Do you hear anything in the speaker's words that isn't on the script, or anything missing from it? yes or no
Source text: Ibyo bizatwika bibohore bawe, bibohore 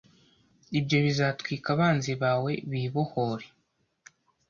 yes